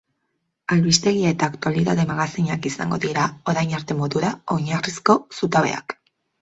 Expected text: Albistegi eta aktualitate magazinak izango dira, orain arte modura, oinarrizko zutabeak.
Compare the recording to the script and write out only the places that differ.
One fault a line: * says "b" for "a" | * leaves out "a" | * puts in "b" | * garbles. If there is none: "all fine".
all fine